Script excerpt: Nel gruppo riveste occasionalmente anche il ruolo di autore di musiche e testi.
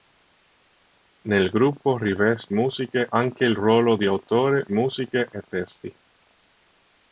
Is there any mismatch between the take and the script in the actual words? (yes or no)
yes